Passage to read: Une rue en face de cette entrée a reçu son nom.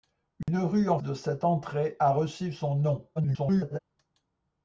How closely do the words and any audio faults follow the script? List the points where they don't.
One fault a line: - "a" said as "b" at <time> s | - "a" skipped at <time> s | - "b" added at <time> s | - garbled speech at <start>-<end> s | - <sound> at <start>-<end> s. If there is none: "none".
- dropout at 0.4-0.5 s
- "face" skipped at 1.0 s
- garbled speech at 3.2-3.8 s